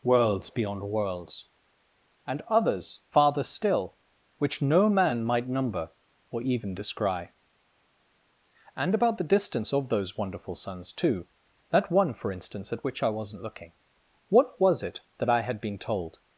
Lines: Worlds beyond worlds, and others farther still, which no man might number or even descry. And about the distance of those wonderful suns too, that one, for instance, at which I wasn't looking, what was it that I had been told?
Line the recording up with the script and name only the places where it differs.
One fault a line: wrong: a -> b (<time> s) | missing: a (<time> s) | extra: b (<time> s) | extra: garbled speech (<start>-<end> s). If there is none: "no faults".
no faults